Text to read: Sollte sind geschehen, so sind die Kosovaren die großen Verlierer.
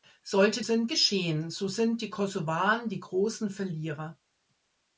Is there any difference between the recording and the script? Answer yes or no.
no